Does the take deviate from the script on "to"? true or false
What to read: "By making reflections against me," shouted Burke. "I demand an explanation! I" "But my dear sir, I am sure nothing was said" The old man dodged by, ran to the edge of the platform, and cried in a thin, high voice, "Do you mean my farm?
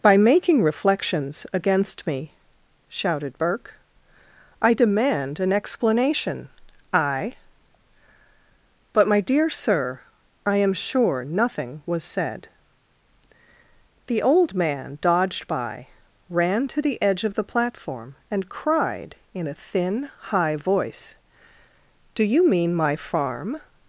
false